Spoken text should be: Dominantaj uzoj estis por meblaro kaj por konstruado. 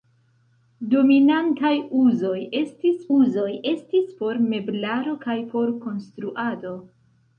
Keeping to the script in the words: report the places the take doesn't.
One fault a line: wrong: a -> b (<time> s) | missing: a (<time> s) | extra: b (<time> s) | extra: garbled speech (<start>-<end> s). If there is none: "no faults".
extra: uzoj estis (3.2 s)